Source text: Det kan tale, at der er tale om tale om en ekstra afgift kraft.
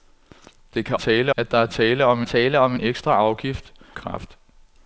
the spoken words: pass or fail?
pass